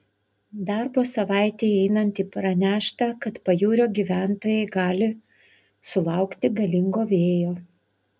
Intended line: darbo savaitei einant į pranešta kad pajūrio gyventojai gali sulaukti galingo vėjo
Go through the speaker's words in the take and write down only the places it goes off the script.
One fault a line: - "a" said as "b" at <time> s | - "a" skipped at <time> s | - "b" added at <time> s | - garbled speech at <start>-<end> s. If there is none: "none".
none